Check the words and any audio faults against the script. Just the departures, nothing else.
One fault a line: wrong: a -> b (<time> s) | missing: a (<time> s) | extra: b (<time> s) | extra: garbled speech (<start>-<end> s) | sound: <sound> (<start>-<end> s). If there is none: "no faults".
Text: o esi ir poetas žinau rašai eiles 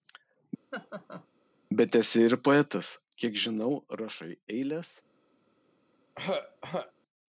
sound: laugh (0.7-1.3 s)
wrong: o -> bet (1.8 s)
extra: kiek (3.2 s)
sound: throat clearing (6.2-6.9 s)